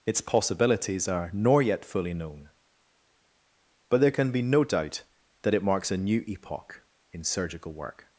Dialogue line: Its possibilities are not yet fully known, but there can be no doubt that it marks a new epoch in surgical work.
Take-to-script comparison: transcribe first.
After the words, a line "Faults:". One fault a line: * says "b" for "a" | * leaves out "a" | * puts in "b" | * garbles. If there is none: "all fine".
Its possibilities are nor yet fully known, but there can be no doubt that it marks a new epoch in surgical work.
Faults:
* says "nor" for "not"